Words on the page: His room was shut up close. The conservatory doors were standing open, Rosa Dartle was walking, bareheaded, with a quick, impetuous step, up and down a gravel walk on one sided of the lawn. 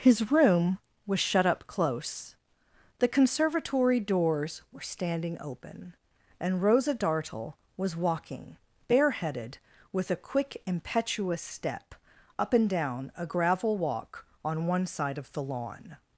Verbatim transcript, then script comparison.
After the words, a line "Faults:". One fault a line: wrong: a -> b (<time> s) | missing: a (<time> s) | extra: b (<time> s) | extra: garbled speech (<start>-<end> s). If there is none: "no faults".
His room was shut up close. The conservatory doors were standing open, and Rosa Dartle was walking, bareheaded, with a quick, impetuous step, up and down a gravel walk on one side of the lawn.
Faults:
extra: and (6.4 s)
wrong: sided -> side (14.8 s)